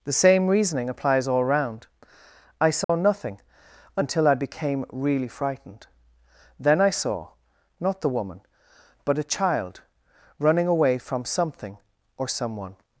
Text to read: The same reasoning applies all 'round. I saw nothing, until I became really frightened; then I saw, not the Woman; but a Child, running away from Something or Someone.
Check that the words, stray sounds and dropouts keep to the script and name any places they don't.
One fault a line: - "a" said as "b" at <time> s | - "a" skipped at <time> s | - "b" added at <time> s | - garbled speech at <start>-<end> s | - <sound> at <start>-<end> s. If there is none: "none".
- dropout at 2.8-2.9 s